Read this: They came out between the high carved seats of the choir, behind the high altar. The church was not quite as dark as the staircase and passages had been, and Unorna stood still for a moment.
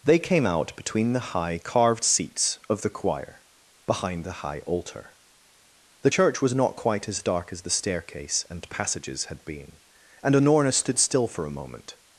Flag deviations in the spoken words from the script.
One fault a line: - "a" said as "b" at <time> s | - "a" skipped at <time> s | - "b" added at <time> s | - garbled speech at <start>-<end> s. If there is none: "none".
none